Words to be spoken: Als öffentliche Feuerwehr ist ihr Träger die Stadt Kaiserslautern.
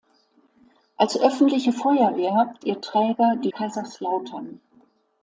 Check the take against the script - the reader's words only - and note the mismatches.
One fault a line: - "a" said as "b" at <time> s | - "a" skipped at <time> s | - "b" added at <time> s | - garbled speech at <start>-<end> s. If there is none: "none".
- "ist" skipped at 2.5 s
- "Stadt" skipped at 3.5 s